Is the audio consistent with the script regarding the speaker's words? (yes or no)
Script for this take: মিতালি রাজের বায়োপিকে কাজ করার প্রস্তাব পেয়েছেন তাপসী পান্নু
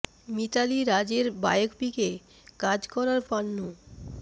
no